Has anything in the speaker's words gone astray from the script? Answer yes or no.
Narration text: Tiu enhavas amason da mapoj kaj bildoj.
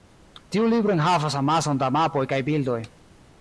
yes